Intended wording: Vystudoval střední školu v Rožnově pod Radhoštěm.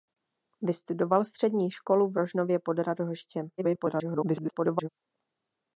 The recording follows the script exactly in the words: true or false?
false